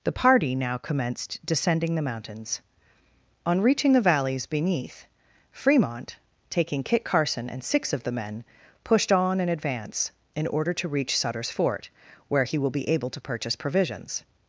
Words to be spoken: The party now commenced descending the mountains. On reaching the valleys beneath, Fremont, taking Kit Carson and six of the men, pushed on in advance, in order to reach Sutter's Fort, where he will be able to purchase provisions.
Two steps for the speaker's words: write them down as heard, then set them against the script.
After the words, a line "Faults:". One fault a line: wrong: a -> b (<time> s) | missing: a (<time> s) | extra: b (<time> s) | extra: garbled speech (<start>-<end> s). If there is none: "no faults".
The party now commenced descending the mountains. On reaching the valleys beneath, Fremont, taking Kit Carson and six of the men, pushed on in advance, in order to reach Sutter's Fort, where he will be able to purchase provisions.
Faults:
no faults